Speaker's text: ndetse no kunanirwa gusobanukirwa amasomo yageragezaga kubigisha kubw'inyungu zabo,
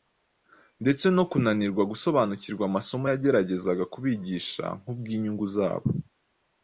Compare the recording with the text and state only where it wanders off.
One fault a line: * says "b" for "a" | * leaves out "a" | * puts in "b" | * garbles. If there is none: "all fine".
all fine